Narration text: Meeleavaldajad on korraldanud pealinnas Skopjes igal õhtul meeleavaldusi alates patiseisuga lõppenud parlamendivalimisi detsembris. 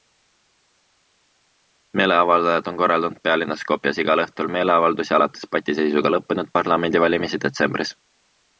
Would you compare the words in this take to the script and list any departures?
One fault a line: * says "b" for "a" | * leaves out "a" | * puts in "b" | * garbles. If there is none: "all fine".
all fine